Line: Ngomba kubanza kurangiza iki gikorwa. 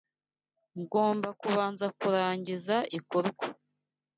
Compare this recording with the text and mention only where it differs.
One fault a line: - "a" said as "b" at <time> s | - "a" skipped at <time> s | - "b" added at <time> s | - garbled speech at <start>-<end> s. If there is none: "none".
- "iki" skipped at 2.8 s